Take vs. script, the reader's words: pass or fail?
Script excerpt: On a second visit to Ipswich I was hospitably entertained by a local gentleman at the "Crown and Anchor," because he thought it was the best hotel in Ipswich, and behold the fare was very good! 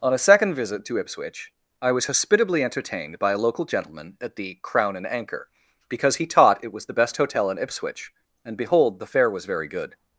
fail